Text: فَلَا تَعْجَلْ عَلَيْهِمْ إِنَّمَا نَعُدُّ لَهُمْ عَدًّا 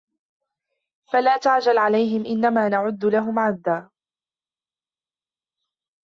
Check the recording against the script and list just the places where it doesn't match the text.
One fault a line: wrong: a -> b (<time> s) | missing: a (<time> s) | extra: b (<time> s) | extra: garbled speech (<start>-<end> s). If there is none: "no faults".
no faults